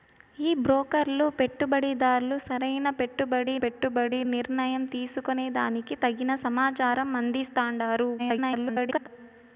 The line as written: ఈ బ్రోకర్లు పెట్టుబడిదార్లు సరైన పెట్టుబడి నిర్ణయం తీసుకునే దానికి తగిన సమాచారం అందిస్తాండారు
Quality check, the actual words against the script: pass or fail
fail